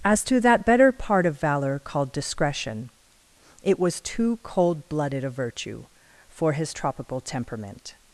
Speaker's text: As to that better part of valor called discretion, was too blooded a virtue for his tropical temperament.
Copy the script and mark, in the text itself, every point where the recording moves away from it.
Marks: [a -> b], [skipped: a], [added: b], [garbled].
As to that better part of valor called discretion, [added: it] was too [added: cold] blooded a virtue for his tropical temperament.